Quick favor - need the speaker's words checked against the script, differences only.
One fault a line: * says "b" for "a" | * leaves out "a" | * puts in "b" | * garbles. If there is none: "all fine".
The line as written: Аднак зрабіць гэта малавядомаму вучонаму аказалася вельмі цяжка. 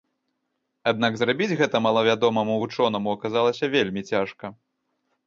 all fine